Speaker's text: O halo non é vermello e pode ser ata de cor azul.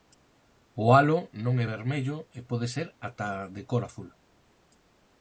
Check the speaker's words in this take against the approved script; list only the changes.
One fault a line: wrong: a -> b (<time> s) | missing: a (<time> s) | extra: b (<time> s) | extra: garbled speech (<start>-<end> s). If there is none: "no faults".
no faults